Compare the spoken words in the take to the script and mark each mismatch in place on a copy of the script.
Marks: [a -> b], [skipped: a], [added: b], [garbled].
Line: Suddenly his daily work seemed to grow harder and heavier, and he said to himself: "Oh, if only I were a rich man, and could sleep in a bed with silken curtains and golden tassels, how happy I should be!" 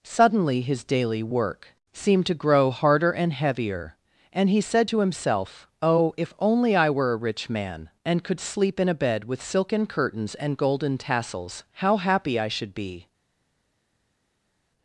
Suddenly his daily work seemed to grow harder and heavier, and he said to himself: "Oh, if only I were a rich man, and could sleep in a bed with silken curtains and golden tassels, how happy I should be!"